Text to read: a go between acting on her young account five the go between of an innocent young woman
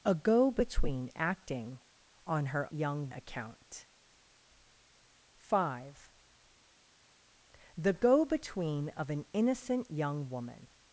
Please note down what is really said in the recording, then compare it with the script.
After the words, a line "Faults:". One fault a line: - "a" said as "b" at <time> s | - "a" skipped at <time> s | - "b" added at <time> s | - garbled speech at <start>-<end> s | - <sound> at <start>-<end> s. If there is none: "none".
a go between acting on her young account five the go between of an innocent young woman
Faults:
none